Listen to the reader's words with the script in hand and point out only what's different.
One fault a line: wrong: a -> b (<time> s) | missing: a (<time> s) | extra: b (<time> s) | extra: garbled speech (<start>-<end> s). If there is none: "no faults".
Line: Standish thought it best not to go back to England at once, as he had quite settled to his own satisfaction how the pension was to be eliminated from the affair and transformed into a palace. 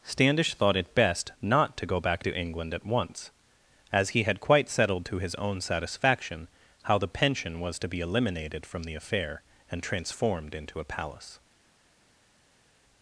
no faults